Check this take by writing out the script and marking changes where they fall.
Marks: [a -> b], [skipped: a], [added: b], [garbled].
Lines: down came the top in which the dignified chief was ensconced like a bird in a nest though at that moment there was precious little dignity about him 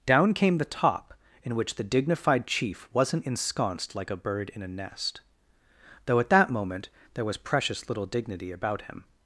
down came the top in which the dignified chief [was -> wasn't] ensconced like a bird in a nest though at that moment there was precious little dignity about him